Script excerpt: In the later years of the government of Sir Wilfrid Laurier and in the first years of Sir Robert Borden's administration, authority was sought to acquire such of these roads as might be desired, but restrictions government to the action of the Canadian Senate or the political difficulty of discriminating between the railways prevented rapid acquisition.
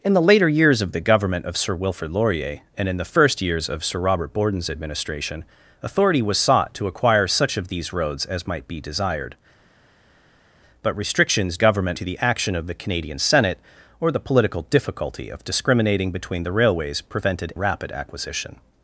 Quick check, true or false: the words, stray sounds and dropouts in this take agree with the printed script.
true